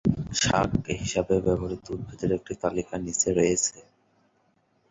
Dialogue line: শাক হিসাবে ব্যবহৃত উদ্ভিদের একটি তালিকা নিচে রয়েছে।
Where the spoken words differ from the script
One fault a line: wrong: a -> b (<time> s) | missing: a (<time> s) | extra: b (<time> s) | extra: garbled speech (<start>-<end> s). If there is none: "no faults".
no faults